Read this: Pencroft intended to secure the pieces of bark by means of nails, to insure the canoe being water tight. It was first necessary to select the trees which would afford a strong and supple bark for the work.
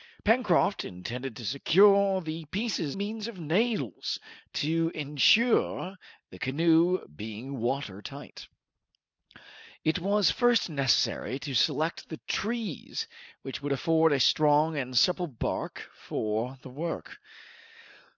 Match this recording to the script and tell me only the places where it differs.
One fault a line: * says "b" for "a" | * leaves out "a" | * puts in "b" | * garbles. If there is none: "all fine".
* leaves out "of bark by"